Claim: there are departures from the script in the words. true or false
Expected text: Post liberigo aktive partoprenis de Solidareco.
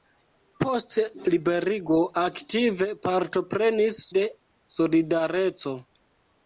false